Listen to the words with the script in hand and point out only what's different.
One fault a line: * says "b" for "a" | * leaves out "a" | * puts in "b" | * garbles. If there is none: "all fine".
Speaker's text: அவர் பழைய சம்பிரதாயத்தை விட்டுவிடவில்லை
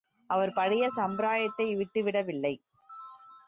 all fine